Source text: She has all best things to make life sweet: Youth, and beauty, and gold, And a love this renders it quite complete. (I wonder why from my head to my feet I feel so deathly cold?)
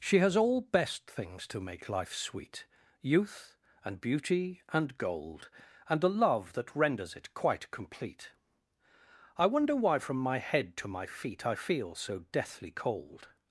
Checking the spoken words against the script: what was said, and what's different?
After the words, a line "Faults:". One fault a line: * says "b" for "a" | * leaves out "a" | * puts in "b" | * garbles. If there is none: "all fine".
She has all best things to make life sweet: Youth, and beauty, and gold, And a love that renders it quite complete. (I wonder why from my head to my feet I feel so deathly cold?)
Faults:
* says "that" for "this"